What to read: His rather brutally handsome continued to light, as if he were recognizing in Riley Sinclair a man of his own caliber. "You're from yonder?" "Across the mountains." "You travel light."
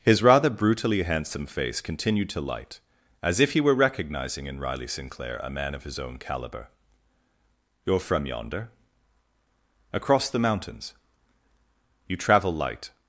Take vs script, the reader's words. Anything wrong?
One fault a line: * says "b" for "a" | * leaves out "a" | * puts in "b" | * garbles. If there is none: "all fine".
* puts in "face"